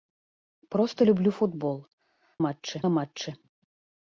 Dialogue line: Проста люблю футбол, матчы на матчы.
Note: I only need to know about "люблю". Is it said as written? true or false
true